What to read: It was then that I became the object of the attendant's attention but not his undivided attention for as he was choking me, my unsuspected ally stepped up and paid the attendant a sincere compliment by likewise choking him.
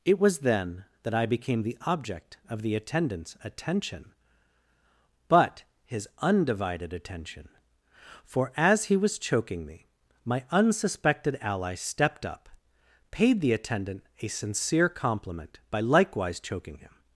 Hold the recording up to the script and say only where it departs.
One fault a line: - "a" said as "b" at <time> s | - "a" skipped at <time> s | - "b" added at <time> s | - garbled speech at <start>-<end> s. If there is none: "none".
- "not" skipped at 5.6 s
- "and" skipped at 12.5 s